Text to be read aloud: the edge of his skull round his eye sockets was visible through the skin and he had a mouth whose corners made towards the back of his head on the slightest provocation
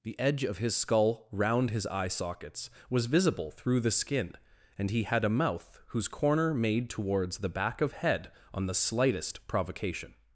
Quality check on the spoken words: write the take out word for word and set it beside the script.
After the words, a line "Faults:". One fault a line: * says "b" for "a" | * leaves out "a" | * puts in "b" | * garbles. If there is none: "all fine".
the edge of his skull round his eye sockets was visible through the skin and he had a mouth whose corner made towards the back of head on the slightest provocation
Faults:
* says "corner" for "corners"
* leaves out "his"